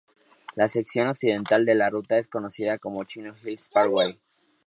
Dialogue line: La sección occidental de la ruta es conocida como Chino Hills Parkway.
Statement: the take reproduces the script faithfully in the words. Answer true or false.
true